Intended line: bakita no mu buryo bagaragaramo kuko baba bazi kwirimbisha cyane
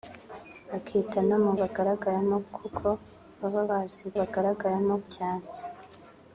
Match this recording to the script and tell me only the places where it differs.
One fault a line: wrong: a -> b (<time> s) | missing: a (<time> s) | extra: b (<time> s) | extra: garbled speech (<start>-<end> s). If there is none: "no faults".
missing: buryo (1.5 s)
wrong: kwirimbisha -> bagaragaramo (4.2 s)